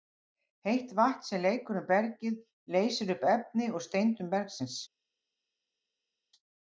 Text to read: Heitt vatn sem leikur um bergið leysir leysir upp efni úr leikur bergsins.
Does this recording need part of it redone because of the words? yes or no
yes